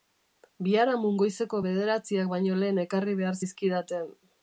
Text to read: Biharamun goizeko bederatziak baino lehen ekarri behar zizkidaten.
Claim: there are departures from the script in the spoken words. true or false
false